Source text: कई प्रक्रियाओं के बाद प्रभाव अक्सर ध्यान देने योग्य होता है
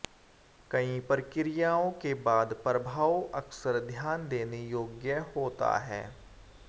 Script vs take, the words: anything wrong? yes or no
no